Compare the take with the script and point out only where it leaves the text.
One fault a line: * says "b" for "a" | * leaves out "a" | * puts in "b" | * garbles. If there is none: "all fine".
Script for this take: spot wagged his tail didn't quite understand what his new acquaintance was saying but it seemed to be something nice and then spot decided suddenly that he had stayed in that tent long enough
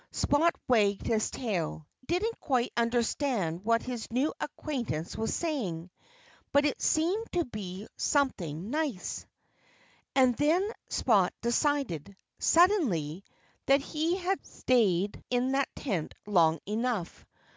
all fine